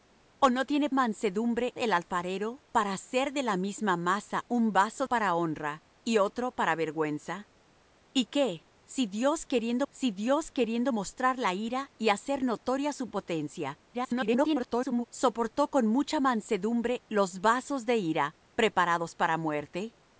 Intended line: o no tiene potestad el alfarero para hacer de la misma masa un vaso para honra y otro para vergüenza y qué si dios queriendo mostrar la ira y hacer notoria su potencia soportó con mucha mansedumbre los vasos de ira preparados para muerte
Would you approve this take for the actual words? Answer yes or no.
no